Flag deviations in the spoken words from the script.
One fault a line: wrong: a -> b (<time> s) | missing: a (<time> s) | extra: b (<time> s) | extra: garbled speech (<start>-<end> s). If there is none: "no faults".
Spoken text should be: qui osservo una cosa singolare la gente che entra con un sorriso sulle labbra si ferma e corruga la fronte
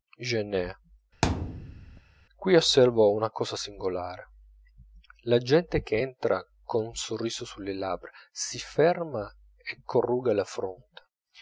no faults